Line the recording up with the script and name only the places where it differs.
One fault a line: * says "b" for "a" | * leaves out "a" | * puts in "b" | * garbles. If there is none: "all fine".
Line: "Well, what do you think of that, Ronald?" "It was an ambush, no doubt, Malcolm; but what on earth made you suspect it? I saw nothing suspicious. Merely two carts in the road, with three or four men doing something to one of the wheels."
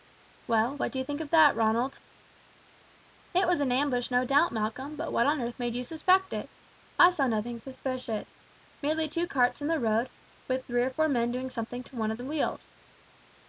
all fine